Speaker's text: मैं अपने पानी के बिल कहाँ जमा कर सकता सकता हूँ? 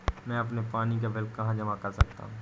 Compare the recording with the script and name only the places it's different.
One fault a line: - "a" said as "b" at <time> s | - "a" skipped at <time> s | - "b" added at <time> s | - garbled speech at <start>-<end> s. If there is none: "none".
- "के" said as "का" at 1.0 s
- "सकता" skipped at 2.2 s